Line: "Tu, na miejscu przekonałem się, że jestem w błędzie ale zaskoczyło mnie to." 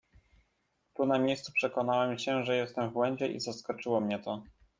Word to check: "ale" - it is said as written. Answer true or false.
false